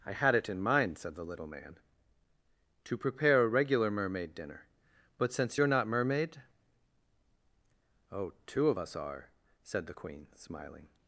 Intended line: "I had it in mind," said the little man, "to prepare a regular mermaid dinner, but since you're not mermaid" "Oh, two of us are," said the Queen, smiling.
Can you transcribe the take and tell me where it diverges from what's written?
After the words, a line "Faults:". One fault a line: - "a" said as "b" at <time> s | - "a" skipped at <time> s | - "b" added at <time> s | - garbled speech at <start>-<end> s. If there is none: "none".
"I had it in mind," said the little man, "to prepare a regular mermaid dinner, but since you're not mermaid" "Oh, two of us are," said the Queen, smiling.
Faults:
none